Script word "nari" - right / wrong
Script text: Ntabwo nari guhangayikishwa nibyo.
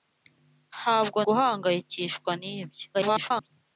wrong